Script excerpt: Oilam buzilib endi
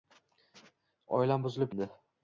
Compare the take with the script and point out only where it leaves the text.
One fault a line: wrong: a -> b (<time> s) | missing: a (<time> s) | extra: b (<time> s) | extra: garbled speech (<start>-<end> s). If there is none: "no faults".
no faults